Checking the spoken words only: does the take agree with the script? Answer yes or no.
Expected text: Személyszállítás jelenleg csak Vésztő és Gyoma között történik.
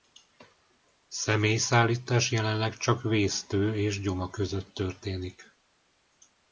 yes